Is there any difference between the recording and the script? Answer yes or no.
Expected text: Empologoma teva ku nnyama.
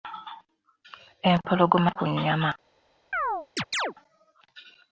yes